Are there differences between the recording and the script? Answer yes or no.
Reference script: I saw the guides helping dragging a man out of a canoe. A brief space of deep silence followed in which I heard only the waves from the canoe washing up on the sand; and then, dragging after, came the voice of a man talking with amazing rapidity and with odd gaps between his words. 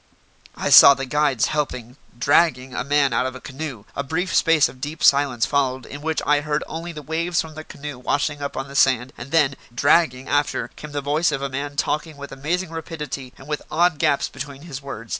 no